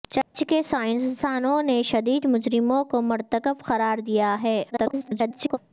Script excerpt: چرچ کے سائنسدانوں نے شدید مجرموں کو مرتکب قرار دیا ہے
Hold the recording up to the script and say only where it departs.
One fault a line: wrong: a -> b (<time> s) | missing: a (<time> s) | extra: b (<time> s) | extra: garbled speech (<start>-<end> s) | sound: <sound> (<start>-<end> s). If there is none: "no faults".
sound: dropout (0.2-0.3 s)
extra: garbled speech (4.7-5.6 s)